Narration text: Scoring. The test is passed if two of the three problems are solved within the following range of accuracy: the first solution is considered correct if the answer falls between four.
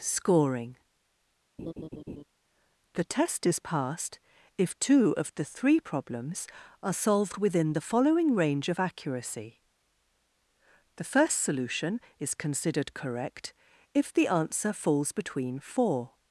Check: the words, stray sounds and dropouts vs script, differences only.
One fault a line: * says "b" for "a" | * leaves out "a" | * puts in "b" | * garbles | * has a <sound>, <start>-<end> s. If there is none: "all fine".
* has a laugh, 1.6-2.2 s